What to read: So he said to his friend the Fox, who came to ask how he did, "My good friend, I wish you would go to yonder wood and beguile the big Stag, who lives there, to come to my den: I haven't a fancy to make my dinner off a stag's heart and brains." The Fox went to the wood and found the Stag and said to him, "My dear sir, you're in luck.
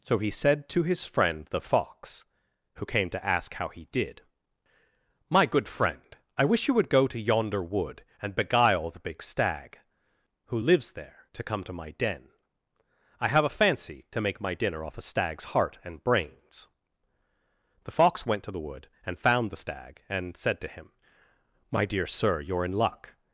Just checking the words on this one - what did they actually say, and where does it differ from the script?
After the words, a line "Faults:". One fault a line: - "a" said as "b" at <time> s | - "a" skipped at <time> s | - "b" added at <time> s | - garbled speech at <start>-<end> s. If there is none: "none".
So he said to his friend the Fox, who came to ask how he did, "My good friend, I wish you would go to yonder wood and beguile the big Stag, who lives there, to come to my den: I have a fancy to make my dinner off a stag's heart and brains." The Fox went to the wood and found the Stag and said to him, "My dear sir, you're in luck.
Faults:
- "haven't" said as "have" at 13.3 s